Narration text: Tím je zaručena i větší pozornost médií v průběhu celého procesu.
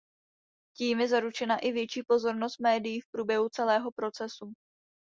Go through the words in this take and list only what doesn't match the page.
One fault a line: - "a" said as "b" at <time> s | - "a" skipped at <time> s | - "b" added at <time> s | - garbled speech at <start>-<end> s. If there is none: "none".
none